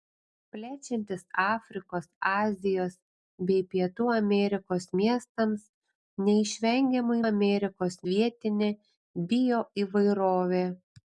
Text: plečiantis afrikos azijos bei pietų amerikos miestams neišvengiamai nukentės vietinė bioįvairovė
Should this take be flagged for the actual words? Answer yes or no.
yes